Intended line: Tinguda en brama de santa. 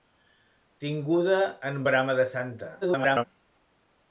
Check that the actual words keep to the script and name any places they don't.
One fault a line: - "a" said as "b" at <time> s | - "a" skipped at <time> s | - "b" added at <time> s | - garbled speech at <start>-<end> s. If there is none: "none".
- garbled speech at 2.8-3.2 s